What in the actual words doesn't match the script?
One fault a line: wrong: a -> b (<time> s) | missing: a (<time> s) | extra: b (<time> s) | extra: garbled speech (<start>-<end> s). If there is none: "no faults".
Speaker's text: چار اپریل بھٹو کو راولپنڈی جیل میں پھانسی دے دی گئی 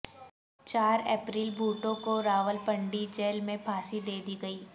no faults